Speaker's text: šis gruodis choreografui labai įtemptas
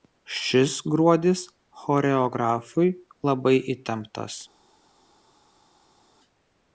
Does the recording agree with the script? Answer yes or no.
yes